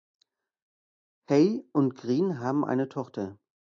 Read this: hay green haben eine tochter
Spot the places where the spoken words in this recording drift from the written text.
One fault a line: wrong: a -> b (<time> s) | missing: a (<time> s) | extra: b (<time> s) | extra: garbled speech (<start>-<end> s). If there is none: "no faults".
extra: und (1.7 s)